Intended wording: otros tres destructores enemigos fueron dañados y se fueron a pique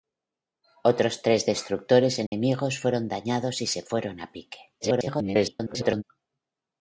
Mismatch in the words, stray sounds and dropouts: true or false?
true